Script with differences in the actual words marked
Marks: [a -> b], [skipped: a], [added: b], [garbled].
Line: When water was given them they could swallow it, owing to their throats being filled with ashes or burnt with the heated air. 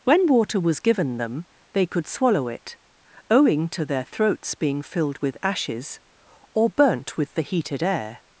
When water was given them they could swallow it, owing to their throats being filled with ashes or burnt with the heated air.